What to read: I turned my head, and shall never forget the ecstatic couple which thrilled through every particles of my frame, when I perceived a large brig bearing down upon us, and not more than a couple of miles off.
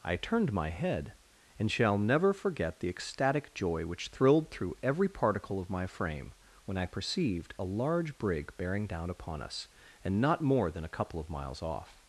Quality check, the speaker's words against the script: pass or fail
fail